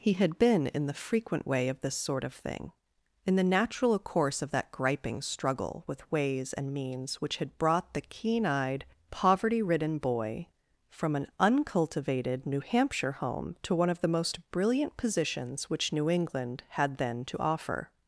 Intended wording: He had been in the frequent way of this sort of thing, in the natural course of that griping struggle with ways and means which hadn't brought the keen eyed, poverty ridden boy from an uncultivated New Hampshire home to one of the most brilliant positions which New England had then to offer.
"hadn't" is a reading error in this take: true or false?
true